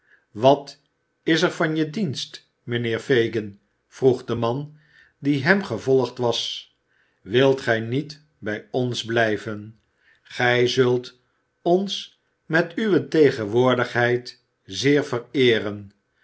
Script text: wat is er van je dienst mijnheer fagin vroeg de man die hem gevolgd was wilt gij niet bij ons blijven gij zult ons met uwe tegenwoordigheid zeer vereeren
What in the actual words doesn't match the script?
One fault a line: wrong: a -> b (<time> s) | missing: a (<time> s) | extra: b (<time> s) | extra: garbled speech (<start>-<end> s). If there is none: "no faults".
no faults